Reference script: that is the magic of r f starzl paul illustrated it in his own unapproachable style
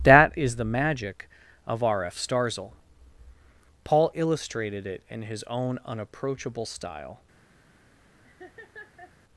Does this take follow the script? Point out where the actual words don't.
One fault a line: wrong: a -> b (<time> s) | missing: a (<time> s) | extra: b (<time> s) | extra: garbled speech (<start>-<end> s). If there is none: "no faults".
no faults